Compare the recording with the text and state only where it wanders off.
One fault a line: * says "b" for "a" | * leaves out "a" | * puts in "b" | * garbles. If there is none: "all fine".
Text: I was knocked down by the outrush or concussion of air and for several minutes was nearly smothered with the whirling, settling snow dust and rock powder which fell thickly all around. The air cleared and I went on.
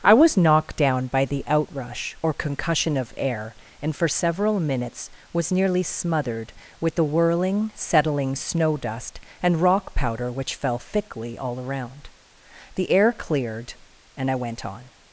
all fine